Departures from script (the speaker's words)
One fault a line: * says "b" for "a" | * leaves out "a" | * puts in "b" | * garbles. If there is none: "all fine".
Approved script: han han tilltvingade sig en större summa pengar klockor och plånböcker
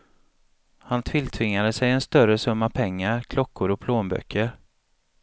* leaves out "han"